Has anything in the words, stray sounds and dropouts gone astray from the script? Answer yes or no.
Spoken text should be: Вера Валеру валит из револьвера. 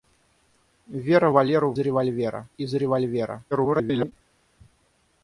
yes